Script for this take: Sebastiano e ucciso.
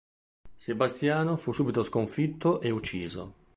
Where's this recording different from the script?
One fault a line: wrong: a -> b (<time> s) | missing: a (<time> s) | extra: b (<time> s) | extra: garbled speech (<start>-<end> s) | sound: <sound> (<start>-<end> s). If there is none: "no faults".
extra: fu subito sconfitto (1.4 s)